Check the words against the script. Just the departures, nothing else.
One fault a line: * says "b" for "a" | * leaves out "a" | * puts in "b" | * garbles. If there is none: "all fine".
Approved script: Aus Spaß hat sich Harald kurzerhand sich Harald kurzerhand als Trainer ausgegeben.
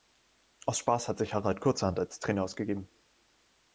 * leaves out "sich Harald kurzerhand"